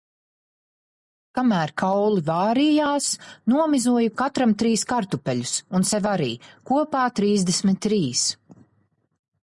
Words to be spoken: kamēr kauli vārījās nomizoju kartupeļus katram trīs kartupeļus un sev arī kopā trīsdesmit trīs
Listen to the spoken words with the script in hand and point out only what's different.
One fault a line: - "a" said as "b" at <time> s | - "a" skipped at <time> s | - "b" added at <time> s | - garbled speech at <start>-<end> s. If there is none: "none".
- "kartupeļus" skipped at 4.1 s